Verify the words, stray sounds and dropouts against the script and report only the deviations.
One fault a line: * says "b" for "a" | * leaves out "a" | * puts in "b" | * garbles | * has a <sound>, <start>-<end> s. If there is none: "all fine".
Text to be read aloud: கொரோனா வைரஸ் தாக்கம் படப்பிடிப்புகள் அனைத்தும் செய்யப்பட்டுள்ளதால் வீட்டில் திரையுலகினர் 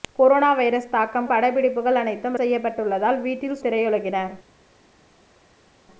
all fine